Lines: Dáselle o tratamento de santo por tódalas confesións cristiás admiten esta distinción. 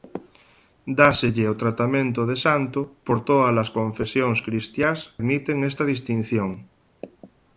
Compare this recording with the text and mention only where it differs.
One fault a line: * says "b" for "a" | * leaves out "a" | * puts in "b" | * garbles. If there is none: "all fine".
all fine